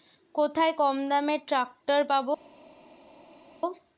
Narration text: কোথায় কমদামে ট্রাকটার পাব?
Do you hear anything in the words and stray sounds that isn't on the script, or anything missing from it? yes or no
no